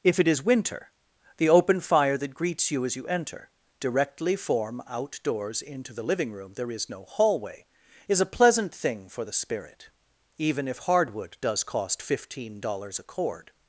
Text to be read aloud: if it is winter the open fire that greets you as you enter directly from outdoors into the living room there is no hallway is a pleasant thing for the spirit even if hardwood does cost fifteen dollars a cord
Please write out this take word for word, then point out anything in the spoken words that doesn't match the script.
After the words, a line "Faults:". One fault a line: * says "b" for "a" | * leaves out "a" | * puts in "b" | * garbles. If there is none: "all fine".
if it is winter the open fire that greets you as you enter directly form outdoors into the living room there is no hallway is a pleasant thing for the spirit even if hardwood does cost fifteen dollars a cord
Faults:
* says "form" for "from"